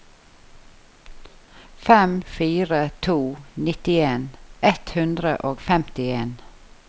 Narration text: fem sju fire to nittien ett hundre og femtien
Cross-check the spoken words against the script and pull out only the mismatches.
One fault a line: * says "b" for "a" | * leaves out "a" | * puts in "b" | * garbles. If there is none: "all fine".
* leaves out "sju"